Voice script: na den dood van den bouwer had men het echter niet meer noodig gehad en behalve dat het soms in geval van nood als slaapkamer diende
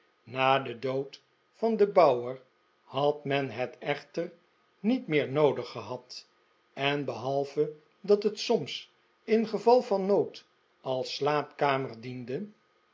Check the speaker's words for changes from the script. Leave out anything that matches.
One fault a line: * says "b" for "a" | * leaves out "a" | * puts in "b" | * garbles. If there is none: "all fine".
all fine